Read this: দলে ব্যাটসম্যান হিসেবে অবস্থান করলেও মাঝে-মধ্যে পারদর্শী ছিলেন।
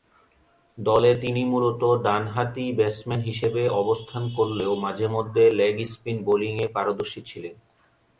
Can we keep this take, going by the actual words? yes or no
no